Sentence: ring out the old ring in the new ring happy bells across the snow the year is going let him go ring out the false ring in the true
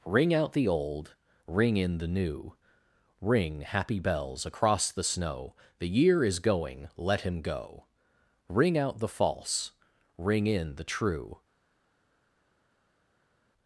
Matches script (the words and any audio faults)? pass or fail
pass